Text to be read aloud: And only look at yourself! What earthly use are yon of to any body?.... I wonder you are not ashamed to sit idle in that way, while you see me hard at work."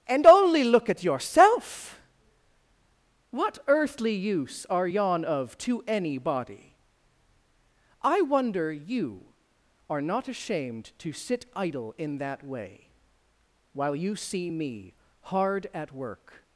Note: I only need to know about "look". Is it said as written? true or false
true